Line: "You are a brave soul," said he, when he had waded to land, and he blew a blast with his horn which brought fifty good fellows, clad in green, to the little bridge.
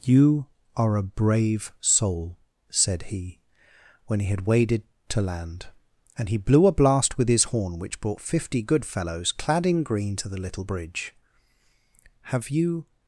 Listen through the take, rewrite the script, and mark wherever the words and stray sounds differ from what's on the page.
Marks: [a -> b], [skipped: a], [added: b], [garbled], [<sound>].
"You are a brave soul," said he, when he had waded to land, and he blew a blast with his horn which brought fifty good fellows, clad in green, to the little bridge. [added: Have you]